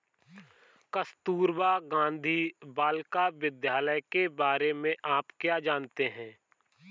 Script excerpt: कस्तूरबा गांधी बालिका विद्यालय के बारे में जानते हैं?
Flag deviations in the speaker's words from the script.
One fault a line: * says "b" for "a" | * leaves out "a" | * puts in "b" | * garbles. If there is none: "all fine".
* puts in "आप क्या"